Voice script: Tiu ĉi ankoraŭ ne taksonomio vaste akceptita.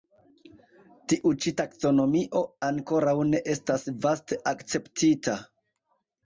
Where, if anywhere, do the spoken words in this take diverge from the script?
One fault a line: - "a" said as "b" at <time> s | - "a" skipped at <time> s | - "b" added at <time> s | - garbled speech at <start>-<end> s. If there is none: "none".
- "taksonomio" added at 1.6 s
- "taksonomio" said as "estas" at 3.6 s